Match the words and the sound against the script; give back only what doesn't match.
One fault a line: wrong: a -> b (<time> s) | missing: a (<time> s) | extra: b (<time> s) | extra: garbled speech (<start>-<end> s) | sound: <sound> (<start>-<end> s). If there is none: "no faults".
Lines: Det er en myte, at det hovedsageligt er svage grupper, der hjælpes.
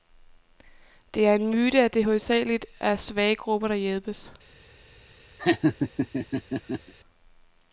sound: laugh (5.4-6.9 s)